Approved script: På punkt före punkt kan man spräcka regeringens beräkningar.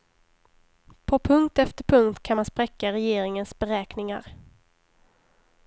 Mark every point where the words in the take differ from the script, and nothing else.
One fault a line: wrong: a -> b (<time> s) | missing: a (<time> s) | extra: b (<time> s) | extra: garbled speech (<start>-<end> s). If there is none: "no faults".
wrong: före -> efter (1.6 s)